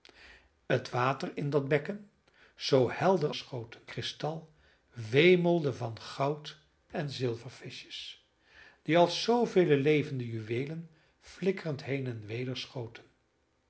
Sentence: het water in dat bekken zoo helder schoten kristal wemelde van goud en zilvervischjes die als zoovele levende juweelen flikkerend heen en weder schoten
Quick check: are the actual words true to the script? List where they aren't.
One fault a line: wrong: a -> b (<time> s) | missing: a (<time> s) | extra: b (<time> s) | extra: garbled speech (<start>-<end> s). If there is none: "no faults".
no faults